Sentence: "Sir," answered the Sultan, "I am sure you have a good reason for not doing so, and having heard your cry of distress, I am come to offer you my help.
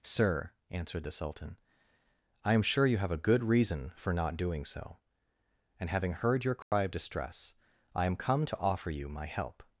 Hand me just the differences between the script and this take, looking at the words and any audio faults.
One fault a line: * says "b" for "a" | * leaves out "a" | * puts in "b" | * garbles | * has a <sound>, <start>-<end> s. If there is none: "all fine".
* has a dropout, 6.6-6.7 s